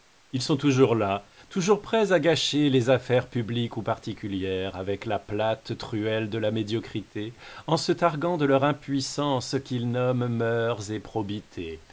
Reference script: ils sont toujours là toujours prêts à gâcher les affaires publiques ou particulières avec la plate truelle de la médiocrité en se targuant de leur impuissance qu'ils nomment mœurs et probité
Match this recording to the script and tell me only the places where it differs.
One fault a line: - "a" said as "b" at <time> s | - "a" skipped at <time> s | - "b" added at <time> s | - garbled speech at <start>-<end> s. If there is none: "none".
none